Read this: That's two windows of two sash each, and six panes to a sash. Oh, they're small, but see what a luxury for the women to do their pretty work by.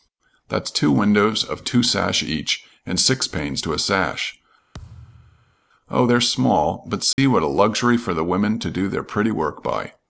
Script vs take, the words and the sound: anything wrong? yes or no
yes